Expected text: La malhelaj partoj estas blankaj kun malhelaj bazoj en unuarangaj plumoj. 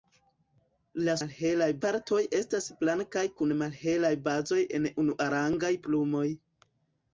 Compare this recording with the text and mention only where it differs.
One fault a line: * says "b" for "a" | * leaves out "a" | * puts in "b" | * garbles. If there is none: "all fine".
all fine